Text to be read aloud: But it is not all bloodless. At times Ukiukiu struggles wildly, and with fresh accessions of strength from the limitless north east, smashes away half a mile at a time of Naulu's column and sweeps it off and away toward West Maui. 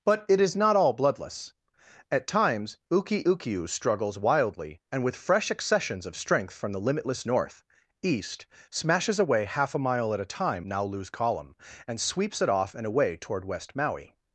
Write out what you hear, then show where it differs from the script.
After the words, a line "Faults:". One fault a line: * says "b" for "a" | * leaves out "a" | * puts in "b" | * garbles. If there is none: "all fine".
But it is not all bloodless. At times Ukiukiu struggles wildly, and with fresh accessions of strength from the limitless north east, smashes away half a mile at a time Naulu's column and sweeps it off and away toward West Maui.
Faults:
* leaves out "of"